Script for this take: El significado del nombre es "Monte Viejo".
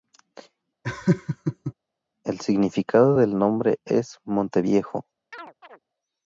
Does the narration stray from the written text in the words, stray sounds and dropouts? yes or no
yes